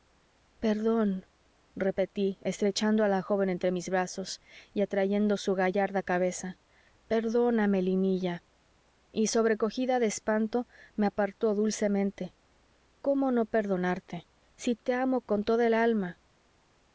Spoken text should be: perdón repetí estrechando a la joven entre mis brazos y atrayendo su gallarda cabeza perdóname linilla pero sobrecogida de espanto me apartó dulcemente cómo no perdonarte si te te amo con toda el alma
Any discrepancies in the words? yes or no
yes